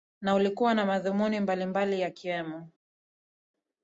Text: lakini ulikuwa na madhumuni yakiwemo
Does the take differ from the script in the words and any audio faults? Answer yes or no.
yes